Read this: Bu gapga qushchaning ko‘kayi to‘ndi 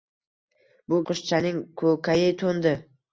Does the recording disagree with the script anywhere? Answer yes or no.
yes